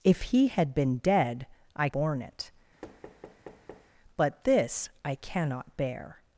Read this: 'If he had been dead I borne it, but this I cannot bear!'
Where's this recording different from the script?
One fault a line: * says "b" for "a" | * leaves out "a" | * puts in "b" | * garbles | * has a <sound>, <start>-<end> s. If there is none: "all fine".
* has a thud, 2.8-3.9 s